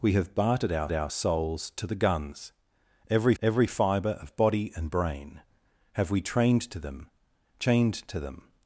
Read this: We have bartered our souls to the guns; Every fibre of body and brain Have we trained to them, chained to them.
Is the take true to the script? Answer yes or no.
no